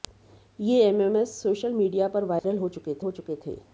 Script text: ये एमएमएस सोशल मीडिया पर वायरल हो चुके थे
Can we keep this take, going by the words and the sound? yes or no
no